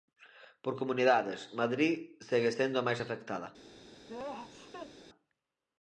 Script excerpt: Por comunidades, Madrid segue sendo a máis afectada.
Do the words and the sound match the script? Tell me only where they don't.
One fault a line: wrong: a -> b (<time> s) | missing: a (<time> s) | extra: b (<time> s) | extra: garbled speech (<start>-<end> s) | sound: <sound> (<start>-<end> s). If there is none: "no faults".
sound: sneeze (4.1-4.9 s)